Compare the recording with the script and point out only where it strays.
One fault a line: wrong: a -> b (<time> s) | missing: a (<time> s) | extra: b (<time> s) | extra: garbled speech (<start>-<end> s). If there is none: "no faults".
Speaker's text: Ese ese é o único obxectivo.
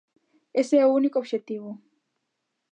missing: ese (0.8 s)